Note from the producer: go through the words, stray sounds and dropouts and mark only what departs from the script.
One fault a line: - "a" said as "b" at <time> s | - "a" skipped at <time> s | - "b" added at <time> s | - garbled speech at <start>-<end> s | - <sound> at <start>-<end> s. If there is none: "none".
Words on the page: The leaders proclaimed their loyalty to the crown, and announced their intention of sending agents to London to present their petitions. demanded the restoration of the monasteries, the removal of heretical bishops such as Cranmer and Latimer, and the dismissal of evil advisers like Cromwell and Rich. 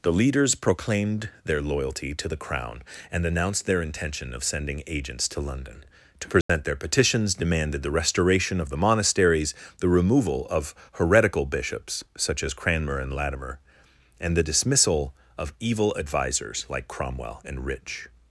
- dropout at 6.4-6.5 s